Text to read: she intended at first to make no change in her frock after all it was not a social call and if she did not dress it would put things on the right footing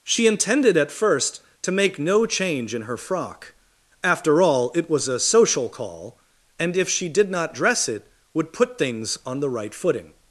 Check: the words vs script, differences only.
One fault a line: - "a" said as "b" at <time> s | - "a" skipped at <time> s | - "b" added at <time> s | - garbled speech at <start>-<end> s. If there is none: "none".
- "not" skipped at 5.1 s